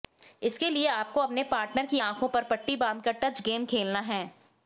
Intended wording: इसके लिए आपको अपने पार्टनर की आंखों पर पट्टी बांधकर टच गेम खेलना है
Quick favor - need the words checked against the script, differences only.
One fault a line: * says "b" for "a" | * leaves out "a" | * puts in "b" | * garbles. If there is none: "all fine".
all fine